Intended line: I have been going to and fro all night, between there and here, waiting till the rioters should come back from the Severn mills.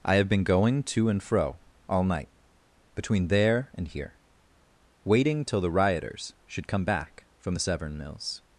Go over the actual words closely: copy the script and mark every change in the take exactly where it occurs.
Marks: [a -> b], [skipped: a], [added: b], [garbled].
I have been going to and fro all night, between there and here, waiting till the rioters should come back from the Severn mills.